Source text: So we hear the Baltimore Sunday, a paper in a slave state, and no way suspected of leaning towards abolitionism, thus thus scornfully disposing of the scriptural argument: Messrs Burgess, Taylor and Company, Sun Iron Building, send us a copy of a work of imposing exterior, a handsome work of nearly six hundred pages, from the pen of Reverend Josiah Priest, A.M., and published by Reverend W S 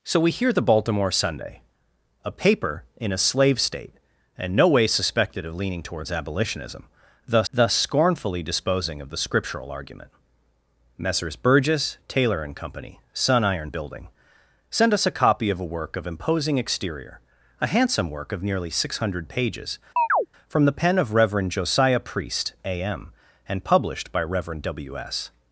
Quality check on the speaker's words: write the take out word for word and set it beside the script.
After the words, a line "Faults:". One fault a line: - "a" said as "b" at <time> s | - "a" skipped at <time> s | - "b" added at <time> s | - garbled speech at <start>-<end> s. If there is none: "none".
So we hear the Baltimore Sunday, a paper in a slave state, and no way suspected of leaning towards abolitionism, thus thus scornfully disposing of the scriptural argument: Messrs Burgess, Taylor and Company, Sun Iron Building, send us a copy of a work of imposing exterior, a handsome work of nearly six hundred pages, from the pen of Reverend Josiah Priest, A.M., and published by Reverend W S
Faults:
none